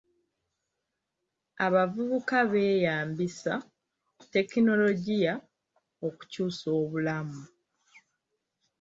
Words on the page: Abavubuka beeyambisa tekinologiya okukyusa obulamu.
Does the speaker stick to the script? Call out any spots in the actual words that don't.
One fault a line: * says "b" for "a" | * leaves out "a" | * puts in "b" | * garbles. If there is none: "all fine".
all fine